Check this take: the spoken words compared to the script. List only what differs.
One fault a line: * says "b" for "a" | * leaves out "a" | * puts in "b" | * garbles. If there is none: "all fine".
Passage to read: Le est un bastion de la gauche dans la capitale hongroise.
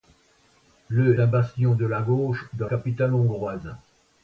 * leaves out "est"
* leaves out "la"